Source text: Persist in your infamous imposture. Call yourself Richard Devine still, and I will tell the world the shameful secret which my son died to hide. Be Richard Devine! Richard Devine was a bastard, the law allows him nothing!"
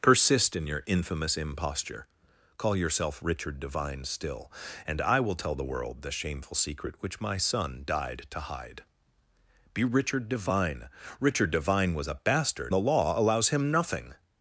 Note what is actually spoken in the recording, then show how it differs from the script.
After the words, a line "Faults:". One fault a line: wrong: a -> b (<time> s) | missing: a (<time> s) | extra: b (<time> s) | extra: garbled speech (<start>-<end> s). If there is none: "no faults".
Persist in your infamous imposture. Call yourself Richard Devine still, and I will tell the world the shameful secret which my son died to hide. Be Richard Devine! Richard Devine was a bastard, the law allows him nothing!"
Faults:
no faults